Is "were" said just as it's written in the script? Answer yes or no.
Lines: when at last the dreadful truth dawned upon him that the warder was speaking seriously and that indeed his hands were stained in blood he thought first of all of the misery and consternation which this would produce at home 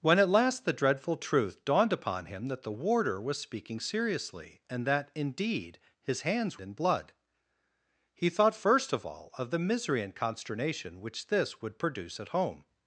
no